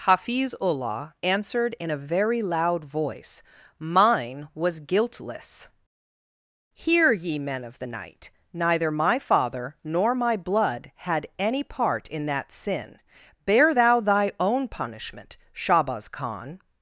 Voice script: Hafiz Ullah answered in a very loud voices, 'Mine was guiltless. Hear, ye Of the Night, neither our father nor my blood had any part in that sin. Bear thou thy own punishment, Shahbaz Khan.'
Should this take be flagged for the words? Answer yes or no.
yes